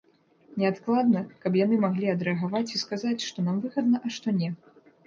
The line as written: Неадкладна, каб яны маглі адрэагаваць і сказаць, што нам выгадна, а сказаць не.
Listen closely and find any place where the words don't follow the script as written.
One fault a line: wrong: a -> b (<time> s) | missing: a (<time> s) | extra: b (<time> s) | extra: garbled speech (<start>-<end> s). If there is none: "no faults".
wrong: сказаць -> што (4.2 s)